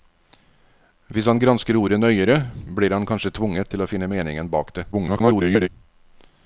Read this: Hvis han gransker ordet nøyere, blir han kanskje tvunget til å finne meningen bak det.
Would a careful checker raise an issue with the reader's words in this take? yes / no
yes